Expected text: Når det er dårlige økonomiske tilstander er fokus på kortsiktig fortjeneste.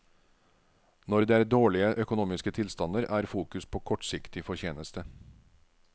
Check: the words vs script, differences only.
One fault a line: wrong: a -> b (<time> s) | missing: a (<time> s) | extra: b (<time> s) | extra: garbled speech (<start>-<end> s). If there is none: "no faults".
no faults